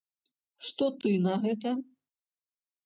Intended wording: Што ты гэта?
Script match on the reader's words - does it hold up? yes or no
no